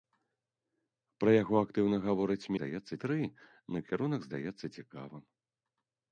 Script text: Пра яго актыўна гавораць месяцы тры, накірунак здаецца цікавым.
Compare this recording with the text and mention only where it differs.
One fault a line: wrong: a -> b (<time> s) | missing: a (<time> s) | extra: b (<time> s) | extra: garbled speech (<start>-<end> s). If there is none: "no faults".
wrong: месяцы -> здаецца (2.6 s)